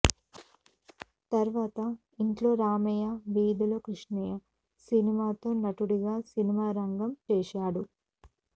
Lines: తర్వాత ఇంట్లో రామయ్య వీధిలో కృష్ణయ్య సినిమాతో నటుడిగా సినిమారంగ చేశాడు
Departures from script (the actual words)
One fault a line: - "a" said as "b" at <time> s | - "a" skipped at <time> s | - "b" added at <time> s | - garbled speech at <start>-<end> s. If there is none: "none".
none